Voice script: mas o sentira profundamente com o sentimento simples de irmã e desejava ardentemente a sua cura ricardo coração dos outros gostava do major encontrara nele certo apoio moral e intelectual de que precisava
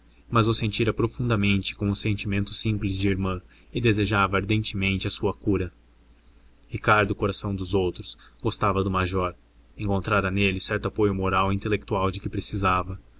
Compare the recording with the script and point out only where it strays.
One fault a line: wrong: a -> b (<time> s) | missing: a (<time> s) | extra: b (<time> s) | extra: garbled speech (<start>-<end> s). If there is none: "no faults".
no faults